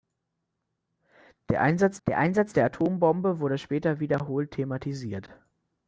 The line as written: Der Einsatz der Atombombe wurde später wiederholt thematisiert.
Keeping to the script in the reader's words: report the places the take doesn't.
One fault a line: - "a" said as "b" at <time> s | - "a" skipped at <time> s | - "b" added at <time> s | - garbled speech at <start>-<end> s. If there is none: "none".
- "Einsatz der" added at 2.2 s